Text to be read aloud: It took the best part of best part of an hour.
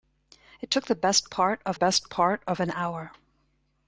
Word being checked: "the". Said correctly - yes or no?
yes